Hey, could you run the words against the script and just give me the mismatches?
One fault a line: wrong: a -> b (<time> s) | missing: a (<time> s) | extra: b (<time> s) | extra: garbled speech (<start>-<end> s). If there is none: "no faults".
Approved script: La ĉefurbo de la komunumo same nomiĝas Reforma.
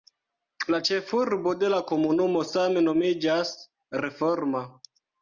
no faults